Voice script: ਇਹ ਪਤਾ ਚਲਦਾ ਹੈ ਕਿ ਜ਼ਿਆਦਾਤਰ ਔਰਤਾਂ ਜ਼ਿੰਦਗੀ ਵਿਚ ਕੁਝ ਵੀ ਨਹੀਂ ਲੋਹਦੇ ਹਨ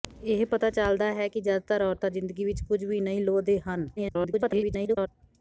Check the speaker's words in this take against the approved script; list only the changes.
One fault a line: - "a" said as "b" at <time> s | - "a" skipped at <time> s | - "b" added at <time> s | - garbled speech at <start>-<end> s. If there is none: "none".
- garbled speech at 4.0-5.1 s